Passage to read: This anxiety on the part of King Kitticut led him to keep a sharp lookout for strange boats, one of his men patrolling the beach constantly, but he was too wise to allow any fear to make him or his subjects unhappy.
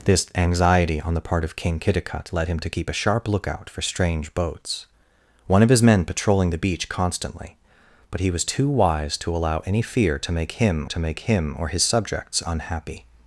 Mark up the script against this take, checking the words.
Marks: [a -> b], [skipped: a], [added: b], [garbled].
This anxiety on the part of King Kitticut led him to keep a sharp lookout for strange boats, one of his men patrolling the beach constantly, but he was too wise to allow any fear to make him [added: to make him] or his subjects unhappy.